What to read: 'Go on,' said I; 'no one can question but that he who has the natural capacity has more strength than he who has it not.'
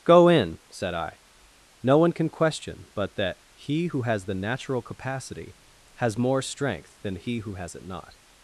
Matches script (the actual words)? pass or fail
fail